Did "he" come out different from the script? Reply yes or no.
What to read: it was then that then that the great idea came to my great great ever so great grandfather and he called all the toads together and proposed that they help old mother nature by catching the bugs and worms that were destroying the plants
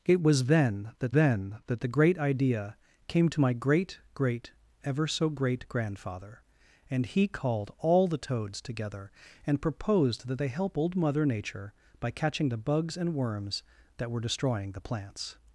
no